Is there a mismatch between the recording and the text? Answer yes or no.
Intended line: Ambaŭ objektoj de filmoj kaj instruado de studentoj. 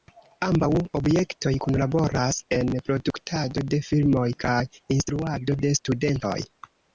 yes